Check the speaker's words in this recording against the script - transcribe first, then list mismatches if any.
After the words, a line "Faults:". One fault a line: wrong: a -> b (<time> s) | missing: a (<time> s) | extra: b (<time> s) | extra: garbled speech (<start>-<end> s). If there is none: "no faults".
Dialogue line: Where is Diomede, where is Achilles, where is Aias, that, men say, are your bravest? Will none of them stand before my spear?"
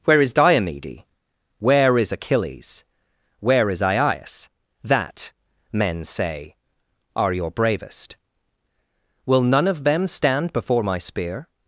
Where is Diomede, where is Achilles, where is Aias, that, men say, are your bravest? Will none of them stand before my spear?"
Faults:
no faults